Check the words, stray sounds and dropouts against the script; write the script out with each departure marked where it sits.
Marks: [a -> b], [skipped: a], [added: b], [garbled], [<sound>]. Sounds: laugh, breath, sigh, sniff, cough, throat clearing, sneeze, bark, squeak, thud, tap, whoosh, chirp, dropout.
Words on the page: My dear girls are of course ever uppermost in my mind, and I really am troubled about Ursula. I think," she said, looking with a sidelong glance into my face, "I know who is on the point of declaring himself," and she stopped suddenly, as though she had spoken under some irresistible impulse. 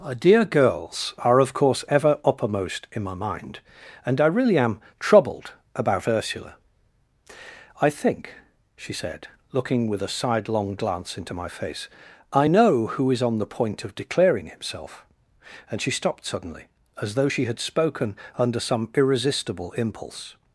[My -> Our] dear girls are of course ever uppermost in my mind, and I really am troubled about Ursula. I think," she said, looking with a sidelong glance into my face, "I know who is on the point of declaring himself," and she stopped suddenly, as though she had spoken under some irresistible impulse.